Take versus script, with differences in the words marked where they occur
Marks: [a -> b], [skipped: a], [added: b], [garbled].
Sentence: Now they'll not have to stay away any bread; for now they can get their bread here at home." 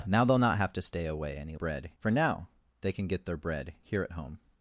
Now they'll not have to stay away any bread; for now they can get their bread here at home."